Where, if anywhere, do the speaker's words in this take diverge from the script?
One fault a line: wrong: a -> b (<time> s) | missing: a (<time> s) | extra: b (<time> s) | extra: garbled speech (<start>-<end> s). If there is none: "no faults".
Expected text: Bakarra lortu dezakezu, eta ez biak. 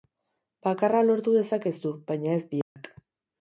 wrong: eta -> baina (2.1 s)